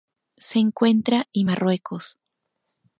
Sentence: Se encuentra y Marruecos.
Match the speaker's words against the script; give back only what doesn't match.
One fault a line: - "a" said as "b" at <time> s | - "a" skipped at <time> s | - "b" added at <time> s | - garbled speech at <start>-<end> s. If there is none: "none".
none